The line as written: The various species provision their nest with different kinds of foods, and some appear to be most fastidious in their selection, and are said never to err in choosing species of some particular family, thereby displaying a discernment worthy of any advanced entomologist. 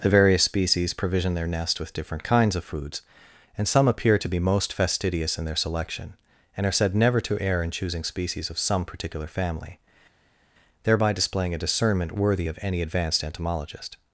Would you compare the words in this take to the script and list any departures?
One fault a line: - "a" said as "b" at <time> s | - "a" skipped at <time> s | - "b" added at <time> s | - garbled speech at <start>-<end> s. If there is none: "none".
none